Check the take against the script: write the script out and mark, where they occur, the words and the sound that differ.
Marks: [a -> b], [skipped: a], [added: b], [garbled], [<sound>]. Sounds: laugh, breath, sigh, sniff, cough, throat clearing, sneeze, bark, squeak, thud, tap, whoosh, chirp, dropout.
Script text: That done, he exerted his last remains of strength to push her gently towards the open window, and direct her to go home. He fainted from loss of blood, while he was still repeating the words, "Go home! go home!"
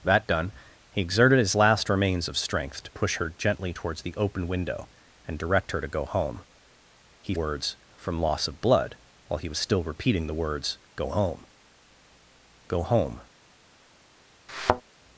That done, he exerted his last remains of strength to push her gently towards the open window, and direct her to go home. He [fainted -> words] from loss of blood, while he was still repeating the words, "Go home! go home!" [thud]